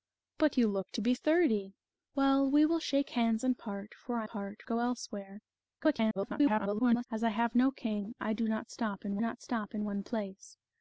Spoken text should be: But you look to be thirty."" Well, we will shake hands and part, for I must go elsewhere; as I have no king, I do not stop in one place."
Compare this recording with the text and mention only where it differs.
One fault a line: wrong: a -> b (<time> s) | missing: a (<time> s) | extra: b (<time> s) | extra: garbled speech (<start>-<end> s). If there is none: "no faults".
wrong: must -> part (4.3 s)
extra: garbled speech (5.8-7.1 s)
extra: not stop in (9.2 s)